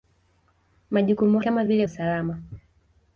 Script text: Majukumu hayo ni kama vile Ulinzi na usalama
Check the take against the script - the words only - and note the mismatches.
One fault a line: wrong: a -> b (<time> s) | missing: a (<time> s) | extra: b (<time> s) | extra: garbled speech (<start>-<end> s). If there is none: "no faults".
missing: hayo ni (1.4 s)
missing: Ulinzi na (1.9 s)